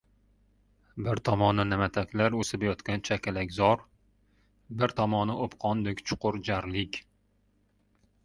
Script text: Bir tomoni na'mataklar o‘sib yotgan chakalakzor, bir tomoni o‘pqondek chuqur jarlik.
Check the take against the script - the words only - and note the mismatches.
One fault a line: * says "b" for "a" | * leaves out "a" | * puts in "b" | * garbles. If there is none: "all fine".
all fine